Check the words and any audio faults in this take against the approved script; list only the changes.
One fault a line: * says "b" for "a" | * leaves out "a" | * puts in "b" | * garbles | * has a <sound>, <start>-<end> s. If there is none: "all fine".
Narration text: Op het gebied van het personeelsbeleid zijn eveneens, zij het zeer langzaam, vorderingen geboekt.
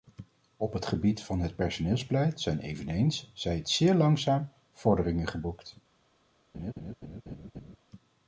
* has a laugh, 6.5-7.8 s